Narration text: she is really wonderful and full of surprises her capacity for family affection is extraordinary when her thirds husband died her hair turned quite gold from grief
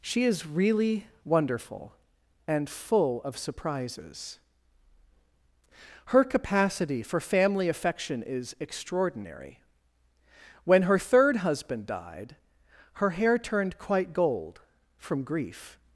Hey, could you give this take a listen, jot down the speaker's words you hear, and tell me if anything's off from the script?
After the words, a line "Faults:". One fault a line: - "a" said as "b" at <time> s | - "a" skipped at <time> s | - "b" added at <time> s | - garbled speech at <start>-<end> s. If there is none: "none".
she is really wonderful and full of surprises her capacity for family affection is extraordinary when her third husband died her hair turned quite gold from grief
Faults:
- "thirds" said as "third" at 11.0 s